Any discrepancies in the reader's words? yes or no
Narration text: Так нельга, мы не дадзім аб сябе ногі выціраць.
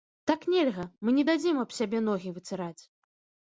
no